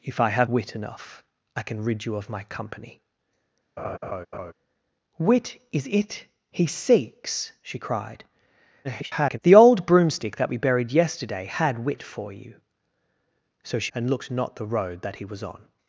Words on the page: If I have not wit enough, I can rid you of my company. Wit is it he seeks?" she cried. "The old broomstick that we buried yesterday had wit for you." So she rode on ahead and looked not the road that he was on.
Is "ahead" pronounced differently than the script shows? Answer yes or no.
yes